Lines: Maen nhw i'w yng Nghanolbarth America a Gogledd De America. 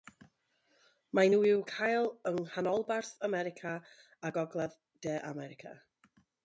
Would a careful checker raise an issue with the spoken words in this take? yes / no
yes